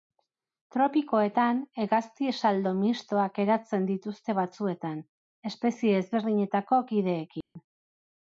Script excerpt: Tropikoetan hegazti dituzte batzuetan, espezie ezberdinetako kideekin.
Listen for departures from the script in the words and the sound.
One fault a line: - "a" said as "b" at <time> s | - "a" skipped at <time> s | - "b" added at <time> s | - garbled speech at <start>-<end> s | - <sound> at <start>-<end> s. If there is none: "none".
- "saldo mistoak eratzen" added at 2.4 s
- dropout at 7.4-7.6 s